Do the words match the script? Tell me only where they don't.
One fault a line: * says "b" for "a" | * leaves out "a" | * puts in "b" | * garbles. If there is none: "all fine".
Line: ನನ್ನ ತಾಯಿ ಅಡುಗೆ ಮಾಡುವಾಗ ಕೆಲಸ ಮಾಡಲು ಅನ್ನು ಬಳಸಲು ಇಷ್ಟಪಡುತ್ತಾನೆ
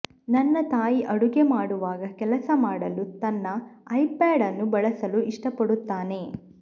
* puts in "ತನ್ನ ಐಪ್ಯಾಡ್"